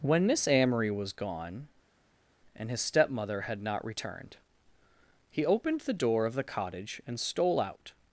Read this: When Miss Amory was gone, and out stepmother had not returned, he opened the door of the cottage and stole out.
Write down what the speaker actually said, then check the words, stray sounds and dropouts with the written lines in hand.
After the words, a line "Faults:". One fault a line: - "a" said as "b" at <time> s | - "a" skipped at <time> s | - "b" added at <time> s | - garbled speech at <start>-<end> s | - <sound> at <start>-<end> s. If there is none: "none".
When Miss Amory was gone, and his stepmother had not returned, he opened the door of the cottage and stole out.
Faults:
- "out" said as "his" at 2.7 s